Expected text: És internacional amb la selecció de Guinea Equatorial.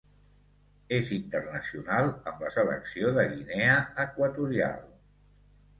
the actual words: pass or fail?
pass